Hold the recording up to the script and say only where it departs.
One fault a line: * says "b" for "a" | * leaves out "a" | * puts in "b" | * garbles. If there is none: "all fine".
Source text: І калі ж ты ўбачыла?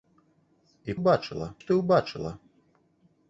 * says "ўбачыла" for "калі"